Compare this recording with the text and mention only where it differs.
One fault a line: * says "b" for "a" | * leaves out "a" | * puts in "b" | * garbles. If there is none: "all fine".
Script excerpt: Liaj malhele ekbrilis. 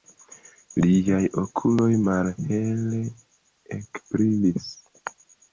* puts in "okuloj"